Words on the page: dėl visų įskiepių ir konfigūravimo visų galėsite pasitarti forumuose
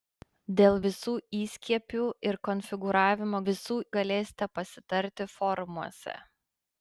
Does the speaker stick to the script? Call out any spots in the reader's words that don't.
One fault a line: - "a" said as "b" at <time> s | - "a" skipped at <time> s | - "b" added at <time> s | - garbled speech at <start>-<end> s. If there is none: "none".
none